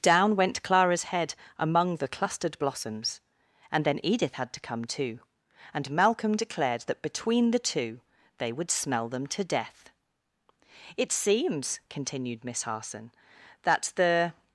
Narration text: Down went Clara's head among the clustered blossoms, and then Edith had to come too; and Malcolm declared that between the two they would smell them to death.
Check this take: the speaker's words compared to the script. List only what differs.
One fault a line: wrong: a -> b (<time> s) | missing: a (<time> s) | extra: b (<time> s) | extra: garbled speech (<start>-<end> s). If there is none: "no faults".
extra: It seems continued Miss Harson that the (11.0 s)